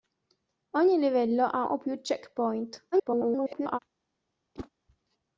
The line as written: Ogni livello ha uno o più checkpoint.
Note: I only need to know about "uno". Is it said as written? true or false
false